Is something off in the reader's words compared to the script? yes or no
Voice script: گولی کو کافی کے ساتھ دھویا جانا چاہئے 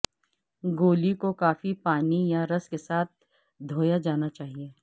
yes